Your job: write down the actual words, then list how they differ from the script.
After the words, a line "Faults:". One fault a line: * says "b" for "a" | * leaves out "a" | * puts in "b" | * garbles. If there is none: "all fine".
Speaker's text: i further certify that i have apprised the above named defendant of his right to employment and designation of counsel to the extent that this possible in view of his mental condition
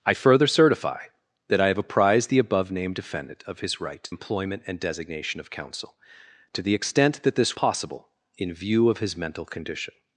i further certify that i have apprised the above named defendant of his right to employment and designation of counsel to the extent that this possible in view of his mental condition
Faults:
all fine